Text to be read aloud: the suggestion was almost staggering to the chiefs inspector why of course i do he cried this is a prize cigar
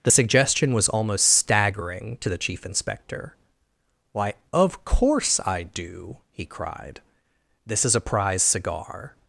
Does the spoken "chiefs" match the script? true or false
false